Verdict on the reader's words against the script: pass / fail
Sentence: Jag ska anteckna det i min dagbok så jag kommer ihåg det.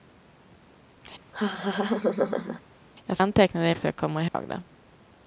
fail